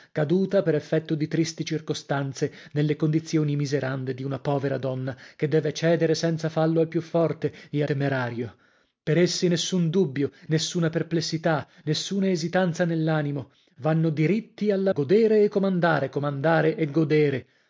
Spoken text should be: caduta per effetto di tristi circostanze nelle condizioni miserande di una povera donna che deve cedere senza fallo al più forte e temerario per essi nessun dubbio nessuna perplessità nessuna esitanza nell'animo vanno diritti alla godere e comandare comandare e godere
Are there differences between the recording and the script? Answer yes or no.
no